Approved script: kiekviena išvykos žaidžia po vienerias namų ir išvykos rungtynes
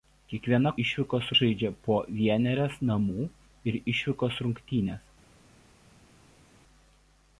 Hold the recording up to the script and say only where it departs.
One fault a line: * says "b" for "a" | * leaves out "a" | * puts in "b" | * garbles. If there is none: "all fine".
all fine